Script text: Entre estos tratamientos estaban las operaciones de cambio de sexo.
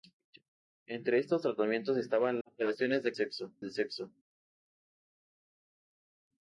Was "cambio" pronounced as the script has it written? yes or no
no